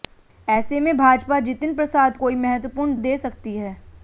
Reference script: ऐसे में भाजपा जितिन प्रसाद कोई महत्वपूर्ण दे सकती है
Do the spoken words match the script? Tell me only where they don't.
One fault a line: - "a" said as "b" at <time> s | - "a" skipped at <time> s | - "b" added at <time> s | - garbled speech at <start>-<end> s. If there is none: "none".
none